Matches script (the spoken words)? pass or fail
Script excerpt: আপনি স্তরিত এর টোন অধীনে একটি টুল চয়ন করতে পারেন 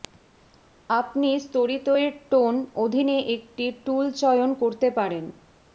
pass